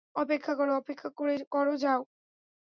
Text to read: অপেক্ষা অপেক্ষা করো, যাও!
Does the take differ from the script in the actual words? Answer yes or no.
yes